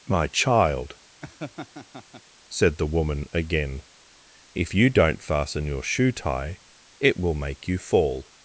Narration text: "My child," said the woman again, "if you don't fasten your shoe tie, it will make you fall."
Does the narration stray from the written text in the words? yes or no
no